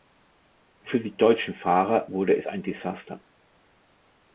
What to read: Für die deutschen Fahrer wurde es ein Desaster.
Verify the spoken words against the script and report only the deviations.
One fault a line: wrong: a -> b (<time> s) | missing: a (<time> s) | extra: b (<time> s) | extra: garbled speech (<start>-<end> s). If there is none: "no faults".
no faults